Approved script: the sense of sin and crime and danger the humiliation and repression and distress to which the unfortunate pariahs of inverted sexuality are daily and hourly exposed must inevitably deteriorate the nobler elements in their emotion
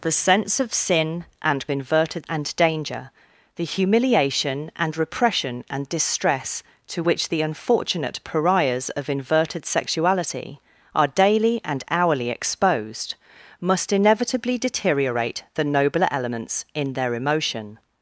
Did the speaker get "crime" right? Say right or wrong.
wrong